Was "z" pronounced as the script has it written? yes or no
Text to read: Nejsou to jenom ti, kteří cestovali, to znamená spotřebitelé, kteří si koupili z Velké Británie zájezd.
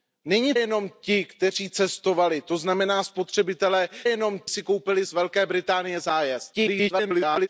yes